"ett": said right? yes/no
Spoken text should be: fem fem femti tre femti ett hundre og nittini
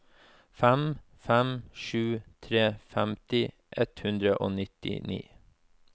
yes